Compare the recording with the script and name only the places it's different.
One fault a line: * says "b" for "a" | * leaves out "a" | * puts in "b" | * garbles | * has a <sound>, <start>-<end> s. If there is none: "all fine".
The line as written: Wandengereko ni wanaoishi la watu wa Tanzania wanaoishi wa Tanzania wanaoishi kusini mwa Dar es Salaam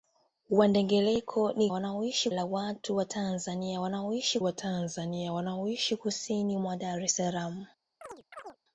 * has a chirp, 8.0-8.6 s